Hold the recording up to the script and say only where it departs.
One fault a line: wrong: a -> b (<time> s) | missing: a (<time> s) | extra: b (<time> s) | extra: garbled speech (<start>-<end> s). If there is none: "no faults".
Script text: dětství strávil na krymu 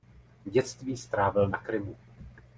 no faults